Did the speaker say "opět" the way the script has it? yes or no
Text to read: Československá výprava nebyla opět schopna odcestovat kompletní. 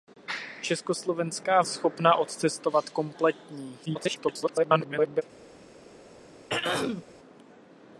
no